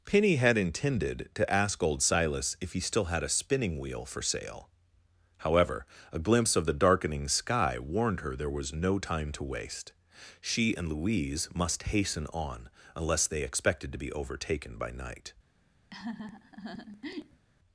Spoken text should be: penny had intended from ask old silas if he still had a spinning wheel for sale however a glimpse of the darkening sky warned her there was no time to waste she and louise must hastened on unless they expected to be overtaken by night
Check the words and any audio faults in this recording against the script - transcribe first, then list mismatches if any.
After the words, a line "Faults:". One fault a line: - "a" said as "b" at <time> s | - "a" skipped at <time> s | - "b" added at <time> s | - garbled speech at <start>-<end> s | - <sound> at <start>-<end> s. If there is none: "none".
penny had intended to ask old silas if he still had a spinning wheel for sale however a glimpse of the darkening sky warned her there was no time to waste she and louise must hasten on unless they expected to be overtaken by night
Faults:
- "from" said as "to" at 1.4 s
- "hastened" said as "hasten" at 11.8 s
- laugh at 15.9-17.5 s